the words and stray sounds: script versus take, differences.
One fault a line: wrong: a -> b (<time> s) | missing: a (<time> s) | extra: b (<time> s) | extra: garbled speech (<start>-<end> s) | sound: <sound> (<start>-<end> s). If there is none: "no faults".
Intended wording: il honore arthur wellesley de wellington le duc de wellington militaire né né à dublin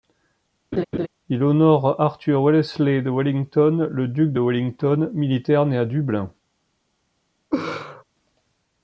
sound: laugh (0.7-1.1 s)
missing: né (5.8 s)
sound: laugh (7.5-8.0 s)